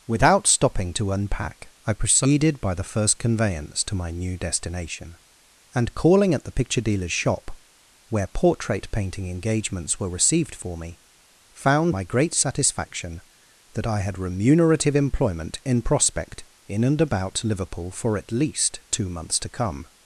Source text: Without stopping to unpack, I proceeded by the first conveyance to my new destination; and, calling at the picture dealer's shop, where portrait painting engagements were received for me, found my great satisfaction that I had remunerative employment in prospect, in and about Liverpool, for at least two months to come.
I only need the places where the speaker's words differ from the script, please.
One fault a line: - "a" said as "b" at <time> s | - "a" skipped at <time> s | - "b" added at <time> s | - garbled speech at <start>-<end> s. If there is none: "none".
none